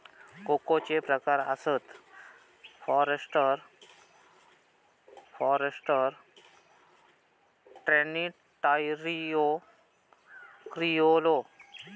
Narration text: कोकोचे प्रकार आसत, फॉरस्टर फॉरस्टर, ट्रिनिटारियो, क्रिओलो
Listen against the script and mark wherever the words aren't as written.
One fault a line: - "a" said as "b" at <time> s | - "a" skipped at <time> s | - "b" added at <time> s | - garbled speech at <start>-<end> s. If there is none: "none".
none